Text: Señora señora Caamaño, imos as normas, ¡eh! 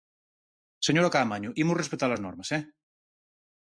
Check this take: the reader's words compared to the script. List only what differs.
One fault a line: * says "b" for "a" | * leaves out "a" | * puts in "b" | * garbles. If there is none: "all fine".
* leaves out "señora"
* puts in "respectar"